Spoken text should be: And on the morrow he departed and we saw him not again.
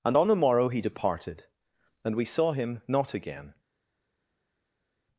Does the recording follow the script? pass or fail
pass